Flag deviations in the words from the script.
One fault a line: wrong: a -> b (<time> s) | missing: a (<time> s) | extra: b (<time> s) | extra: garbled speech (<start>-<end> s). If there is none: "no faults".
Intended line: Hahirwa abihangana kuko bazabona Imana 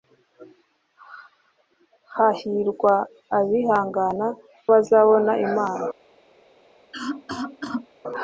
missing: kuko (4.3 s)